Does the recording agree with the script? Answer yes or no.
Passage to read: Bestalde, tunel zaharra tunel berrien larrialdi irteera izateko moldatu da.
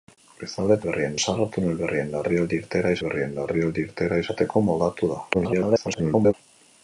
no